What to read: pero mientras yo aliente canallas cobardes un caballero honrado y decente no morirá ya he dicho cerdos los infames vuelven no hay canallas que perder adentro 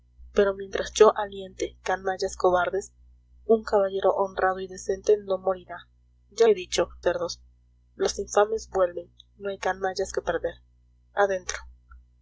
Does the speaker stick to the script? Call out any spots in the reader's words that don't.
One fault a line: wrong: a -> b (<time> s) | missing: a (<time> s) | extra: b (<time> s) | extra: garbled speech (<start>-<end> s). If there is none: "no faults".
no faults